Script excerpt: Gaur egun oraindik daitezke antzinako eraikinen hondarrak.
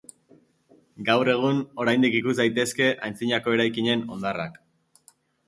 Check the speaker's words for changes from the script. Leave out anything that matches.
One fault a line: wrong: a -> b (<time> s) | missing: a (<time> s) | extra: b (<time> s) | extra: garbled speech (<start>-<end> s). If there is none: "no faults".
extra: ikus (2.2 s)